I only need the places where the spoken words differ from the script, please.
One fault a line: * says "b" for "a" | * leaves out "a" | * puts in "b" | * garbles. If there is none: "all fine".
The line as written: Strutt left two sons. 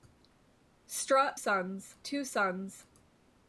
* says "sons" for "left"